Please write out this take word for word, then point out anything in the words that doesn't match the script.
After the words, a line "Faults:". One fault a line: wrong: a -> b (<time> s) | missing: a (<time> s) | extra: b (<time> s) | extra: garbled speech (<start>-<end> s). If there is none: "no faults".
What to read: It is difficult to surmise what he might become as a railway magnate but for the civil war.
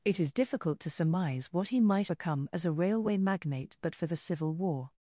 It is difficult to surmise what he might become as a railway magnate but for the civil war.
Faults:
no faults